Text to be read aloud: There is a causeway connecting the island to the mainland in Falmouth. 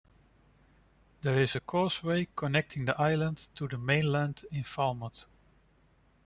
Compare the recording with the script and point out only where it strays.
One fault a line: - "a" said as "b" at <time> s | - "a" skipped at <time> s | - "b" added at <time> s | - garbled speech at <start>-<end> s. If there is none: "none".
none